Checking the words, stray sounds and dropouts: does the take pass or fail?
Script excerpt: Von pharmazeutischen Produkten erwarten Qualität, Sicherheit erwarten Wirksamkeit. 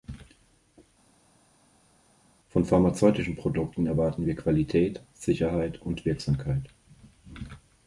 fail